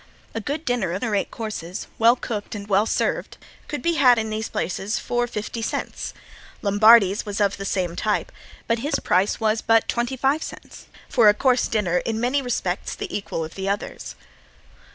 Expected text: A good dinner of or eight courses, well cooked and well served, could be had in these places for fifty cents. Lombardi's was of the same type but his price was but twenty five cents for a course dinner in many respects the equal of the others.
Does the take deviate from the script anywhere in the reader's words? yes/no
no